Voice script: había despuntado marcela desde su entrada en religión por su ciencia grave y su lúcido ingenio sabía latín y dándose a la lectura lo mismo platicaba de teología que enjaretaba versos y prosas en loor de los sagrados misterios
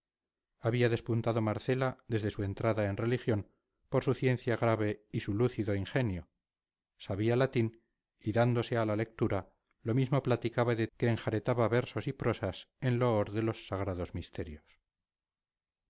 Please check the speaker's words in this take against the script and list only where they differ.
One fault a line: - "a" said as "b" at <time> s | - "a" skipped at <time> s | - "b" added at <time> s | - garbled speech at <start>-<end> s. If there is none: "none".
- "teología" skipped at 10.9 s